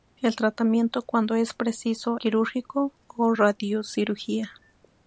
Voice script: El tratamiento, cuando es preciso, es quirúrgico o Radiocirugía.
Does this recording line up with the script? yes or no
no